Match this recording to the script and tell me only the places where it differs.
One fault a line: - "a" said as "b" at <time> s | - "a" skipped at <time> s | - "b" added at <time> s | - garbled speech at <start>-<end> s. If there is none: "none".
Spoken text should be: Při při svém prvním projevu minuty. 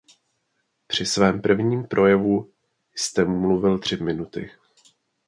- "při" skipped at 1.1 s
- "jste mluvil tři" added at 2.9 s